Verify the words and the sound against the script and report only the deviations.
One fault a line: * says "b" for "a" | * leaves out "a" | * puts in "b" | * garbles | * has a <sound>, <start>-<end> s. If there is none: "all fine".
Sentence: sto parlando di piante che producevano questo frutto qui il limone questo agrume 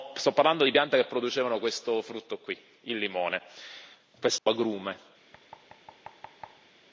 * has a dropout, 4.4-4.5 s
* has a thud, 5.3-6.7 s